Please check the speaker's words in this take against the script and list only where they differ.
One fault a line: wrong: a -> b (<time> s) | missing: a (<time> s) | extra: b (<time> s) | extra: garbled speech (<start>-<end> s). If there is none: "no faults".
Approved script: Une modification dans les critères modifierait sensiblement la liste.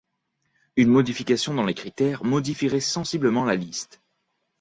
no faults